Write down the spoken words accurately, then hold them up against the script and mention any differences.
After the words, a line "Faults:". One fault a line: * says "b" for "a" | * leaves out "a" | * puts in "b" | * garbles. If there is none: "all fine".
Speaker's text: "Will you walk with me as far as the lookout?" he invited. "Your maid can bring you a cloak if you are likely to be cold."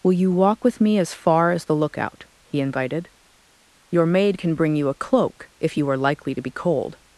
"Will you walk with me as far as the lookout?" he invited. "Your maid can bring you a cloak if you are likely to be cold."
Faults:
all fine